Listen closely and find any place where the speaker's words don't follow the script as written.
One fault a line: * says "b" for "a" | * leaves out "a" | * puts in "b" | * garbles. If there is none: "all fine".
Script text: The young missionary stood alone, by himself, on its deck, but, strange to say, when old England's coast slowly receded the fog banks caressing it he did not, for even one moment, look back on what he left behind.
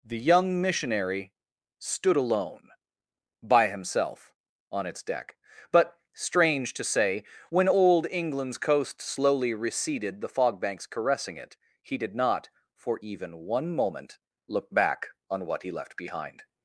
all fine